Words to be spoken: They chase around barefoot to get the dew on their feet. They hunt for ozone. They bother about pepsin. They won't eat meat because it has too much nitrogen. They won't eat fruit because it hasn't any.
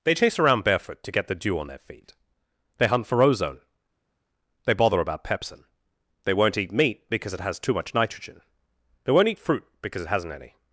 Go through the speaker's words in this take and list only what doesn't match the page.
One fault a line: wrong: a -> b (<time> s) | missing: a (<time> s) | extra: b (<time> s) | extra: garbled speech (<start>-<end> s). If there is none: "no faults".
no faults